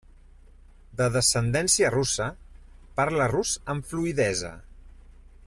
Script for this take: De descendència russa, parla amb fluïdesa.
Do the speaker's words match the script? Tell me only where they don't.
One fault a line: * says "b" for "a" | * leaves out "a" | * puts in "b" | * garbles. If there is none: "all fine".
* puts in "rus"